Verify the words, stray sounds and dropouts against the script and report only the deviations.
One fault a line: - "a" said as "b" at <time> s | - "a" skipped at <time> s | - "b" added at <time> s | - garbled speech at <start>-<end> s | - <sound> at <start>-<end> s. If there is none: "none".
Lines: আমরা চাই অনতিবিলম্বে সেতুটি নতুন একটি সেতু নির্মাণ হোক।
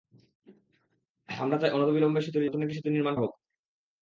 none